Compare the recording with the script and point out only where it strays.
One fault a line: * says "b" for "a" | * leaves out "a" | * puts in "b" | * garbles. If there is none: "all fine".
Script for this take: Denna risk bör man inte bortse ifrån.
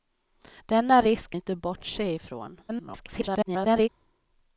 * leaves out "bör man"
* garbles